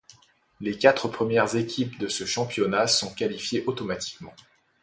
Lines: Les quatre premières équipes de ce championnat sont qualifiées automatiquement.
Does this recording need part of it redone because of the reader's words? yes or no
no